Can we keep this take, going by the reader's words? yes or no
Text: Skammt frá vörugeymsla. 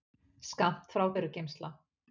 yes